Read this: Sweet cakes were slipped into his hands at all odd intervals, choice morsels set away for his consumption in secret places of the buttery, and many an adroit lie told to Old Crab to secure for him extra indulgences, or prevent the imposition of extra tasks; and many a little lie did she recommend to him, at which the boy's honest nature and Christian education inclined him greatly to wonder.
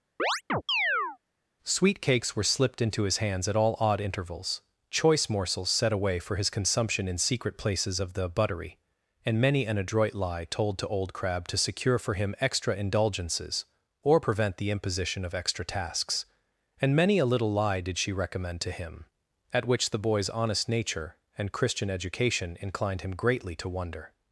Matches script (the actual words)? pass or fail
pass